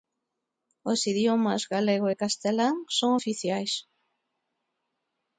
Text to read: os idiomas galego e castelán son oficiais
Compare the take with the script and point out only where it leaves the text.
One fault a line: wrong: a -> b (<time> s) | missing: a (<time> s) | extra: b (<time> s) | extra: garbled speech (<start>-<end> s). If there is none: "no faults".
no faults